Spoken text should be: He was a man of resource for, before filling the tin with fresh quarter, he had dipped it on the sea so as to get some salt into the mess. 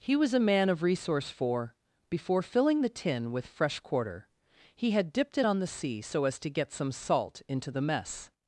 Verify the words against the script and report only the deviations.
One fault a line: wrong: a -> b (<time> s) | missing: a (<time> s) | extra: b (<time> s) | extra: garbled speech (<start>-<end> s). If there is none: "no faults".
no faults